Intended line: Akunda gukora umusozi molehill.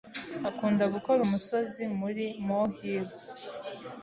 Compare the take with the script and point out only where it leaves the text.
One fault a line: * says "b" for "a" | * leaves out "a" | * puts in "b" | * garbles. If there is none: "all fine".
* puts in "muri"